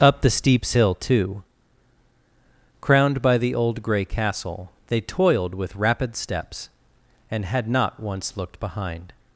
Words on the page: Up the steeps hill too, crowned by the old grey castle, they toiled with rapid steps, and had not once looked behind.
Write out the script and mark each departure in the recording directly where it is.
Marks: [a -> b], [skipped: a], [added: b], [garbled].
Up the steeps hill too, crowned by the old grey castle, they toiled with rapid steps, and had not once looked behind.